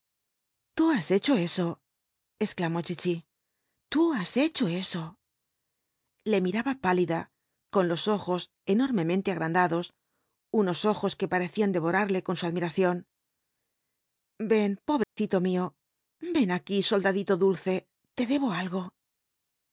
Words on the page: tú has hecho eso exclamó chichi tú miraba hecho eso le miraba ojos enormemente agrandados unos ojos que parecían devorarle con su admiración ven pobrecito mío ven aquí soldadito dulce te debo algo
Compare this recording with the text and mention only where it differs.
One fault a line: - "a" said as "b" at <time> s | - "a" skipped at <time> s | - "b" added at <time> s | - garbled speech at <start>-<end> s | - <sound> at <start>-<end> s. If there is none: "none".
- "miraba" said as "has" at 4.2 s
- "pálida con los" added at 6.9 s
- dropout at 15.0-15.2 s